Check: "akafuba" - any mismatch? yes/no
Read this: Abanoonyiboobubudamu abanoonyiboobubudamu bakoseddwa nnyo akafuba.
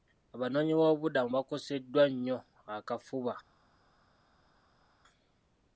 no